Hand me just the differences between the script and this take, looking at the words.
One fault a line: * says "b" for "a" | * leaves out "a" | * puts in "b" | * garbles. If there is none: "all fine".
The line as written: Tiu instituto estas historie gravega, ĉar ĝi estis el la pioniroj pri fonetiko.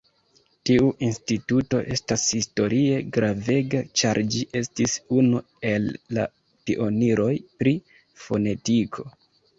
* puts in "unu"